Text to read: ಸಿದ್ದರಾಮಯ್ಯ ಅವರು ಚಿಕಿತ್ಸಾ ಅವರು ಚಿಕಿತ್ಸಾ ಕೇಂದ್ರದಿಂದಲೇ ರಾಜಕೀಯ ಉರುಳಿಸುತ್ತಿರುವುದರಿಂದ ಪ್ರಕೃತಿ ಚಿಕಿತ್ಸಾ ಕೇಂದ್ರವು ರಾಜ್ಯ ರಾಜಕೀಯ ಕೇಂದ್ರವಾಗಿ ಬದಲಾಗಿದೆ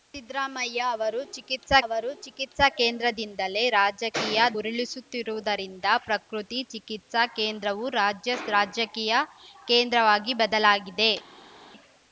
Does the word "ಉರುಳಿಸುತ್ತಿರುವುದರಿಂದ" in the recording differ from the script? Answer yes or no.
no